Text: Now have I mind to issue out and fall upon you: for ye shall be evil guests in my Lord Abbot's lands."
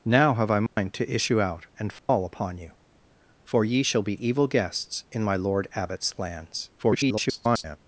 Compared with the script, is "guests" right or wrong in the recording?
right